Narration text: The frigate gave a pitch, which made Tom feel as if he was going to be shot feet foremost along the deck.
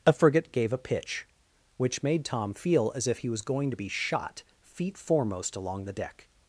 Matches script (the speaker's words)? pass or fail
fail